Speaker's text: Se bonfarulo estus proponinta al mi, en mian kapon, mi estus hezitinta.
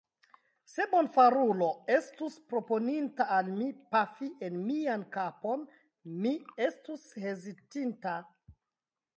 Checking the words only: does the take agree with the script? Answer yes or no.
no